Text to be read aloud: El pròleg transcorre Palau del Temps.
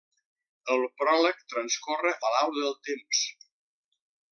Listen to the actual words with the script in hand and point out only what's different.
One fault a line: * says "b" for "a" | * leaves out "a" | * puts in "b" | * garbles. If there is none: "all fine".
all fine